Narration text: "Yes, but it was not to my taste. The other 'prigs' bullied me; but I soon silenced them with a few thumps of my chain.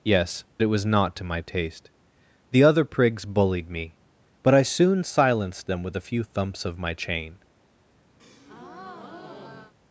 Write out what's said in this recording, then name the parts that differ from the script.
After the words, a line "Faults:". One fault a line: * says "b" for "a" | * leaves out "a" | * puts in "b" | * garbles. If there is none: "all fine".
"Yes, it was not to my taste. The other 'prigs' bullied me; but I soon silenced them with a few thumps of my chain.
Faults:
* leaves out "but"